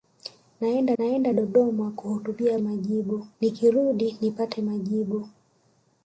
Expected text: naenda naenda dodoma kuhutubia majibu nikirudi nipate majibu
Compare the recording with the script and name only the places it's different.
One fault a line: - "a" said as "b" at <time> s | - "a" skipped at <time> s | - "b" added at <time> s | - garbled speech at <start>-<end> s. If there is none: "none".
none